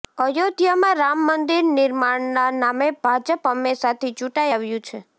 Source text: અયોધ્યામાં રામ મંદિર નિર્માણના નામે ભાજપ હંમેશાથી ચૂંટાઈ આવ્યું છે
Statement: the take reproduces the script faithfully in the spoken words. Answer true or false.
true